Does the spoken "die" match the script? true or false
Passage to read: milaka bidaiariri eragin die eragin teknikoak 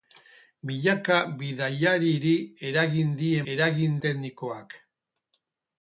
true